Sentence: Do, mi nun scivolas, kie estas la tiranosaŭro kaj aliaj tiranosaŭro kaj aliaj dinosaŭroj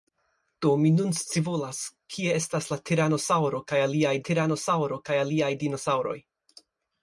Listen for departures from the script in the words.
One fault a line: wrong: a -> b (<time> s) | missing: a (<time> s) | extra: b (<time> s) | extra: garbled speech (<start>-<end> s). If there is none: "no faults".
no faults